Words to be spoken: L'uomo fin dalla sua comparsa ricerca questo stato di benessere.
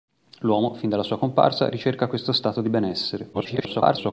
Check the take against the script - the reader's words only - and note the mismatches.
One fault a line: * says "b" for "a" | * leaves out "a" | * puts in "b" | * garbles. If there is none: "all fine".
* garbles